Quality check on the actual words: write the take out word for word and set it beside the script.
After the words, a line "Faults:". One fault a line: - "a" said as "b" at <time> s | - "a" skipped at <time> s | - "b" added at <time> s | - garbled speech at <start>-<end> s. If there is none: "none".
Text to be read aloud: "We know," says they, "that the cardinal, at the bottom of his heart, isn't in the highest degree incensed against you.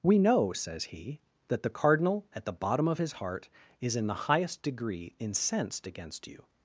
"We know," says he, "that the cardinal, at the bottom of his heart, is in the highest degree incensed against you.
Faults:
- "they" said as "he" at 0.8 s
- "isn't" said as "is" at 3.8 s